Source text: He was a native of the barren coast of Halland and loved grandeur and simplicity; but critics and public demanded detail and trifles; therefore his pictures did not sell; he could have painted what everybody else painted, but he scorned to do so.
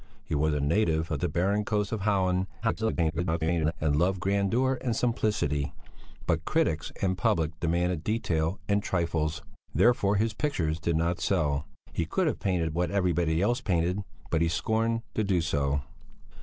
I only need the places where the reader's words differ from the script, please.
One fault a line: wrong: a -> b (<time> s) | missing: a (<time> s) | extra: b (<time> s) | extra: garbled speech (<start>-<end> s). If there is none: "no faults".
extra: garbled speech (2.6-3.7 s)